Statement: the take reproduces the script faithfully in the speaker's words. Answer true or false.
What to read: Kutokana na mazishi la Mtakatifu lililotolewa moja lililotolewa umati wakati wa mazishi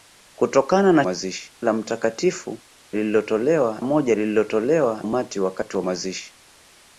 true